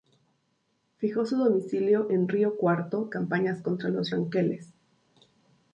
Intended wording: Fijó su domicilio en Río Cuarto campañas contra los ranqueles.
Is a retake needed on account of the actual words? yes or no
no